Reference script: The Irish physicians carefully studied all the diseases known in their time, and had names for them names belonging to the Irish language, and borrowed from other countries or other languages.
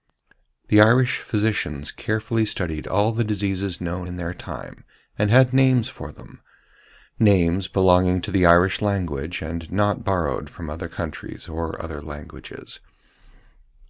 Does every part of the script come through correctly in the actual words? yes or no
no